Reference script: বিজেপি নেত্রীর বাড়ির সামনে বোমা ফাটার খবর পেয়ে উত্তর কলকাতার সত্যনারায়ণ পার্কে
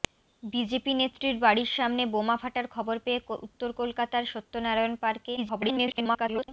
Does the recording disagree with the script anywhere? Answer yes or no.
yes